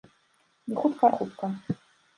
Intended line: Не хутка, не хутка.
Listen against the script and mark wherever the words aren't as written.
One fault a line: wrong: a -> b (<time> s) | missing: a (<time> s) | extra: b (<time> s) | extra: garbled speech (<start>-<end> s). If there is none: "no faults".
missing: не (1.1 s)